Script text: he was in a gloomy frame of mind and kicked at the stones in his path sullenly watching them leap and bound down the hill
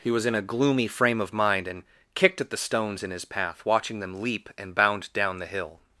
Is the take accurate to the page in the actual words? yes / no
no